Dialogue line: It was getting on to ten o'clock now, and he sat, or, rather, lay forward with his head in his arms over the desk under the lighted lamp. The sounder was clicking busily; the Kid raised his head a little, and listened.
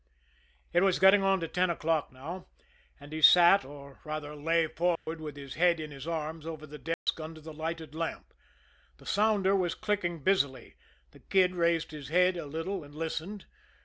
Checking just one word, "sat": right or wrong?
right